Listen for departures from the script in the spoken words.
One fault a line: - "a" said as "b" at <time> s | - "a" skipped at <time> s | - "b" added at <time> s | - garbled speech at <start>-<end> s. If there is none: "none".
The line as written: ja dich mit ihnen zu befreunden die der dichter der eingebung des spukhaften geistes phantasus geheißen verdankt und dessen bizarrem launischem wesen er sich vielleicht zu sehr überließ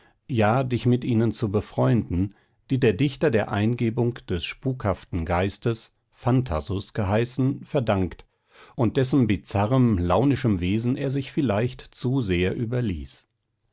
none